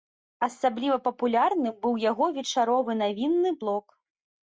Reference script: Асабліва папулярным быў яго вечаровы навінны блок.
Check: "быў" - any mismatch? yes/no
no